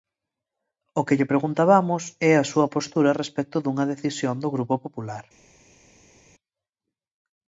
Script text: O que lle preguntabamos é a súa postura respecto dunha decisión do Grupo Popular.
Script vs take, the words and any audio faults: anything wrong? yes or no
no